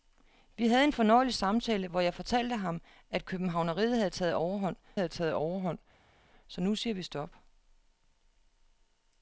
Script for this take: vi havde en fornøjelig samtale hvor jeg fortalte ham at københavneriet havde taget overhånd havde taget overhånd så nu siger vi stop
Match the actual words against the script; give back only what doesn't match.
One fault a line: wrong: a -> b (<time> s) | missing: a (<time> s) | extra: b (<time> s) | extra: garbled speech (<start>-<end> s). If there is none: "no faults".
no faults